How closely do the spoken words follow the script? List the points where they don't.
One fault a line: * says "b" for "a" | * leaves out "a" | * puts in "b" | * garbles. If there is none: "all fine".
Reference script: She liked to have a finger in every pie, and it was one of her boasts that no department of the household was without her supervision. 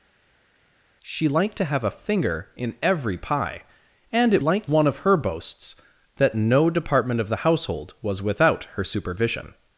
* says "liked" for "was"